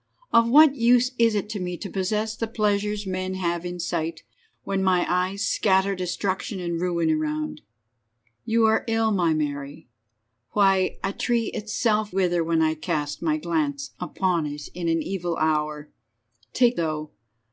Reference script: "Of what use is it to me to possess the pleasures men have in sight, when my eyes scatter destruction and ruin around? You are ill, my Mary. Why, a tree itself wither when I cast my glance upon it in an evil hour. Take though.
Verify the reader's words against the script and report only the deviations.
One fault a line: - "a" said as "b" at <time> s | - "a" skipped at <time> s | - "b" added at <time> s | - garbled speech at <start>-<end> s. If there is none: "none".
none